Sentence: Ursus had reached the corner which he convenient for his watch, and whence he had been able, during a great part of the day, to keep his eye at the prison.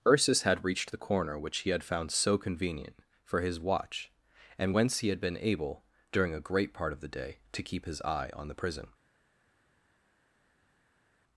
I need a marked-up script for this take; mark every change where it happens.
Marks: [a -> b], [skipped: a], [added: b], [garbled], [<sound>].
Ursus had reached the corner which he [added: had found so] convenient for his watch, and whence he had been able, during a great part of the day, to keep his eye [at -> on] the prison.